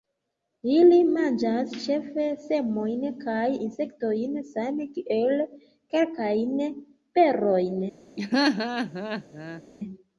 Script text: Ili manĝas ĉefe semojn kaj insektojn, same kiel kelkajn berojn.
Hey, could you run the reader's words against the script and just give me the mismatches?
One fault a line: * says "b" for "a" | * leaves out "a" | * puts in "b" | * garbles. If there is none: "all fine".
all fine